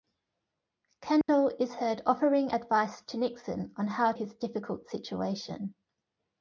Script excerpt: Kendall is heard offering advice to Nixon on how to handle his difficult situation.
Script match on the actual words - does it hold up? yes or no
no